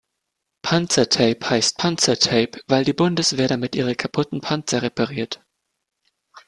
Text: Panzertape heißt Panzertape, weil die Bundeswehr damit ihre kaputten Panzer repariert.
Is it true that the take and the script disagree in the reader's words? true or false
false